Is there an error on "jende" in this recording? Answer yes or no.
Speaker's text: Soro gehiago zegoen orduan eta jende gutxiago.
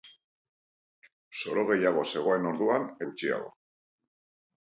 yes